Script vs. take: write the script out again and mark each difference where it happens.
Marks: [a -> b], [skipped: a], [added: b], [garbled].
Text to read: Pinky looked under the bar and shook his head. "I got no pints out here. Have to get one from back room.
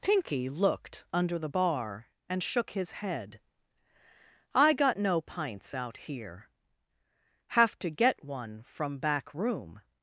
Pinky looked under the bar and shook his head. "I got no pints out here. Have to get one from back room.